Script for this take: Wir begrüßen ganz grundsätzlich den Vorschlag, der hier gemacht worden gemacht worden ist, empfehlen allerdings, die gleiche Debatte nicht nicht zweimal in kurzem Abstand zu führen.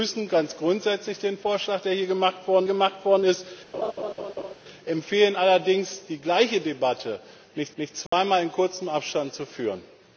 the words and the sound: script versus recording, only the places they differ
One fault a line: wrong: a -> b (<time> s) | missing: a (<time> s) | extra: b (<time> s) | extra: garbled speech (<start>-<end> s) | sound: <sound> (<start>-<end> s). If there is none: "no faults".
sound: laugh (3.7-4.5 s)
sound: dropout (8.1-8.1 s)